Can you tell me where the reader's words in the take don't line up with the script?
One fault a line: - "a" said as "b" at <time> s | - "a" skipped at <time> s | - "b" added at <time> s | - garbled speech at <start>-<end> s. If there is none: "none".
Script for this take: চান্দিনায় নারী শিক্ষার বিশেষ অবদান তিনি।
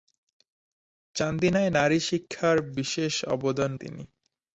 none